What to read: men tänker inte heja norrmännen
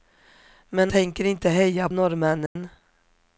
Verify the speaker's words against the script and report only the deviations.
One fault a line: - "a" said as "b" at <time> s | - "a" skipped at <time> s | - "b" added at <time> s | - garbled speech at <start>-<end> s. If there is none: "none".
none